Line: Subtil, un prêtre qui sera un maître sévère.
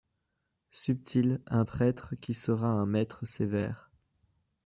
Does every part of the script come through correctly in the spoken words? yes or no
yes